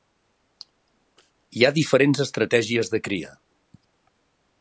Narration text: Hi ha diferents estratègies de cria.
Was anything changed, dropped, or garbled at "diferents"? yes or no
no